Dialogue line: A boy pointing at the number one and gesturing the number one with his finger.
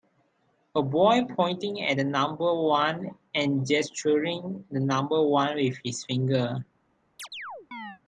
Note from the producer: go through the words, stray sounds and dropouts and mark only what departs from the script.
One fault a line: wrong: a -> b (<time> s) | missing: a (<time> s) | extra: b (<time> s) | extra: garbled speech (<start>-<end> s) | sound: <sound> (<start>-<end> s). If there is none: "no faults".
sound: chirp (7.2-8.0 s)